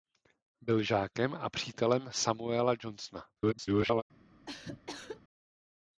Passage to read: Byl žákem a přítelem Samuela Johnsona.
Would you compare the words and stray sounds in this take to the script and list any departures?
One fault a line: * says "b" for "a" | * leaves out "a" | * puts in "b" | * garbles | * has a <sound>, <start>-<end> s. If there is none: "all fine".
* garbles
* has a cough, 4.5-5.2 s